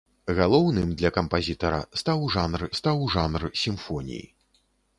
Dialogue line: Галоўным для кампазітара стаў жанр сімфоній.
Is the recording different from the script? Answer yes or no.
yes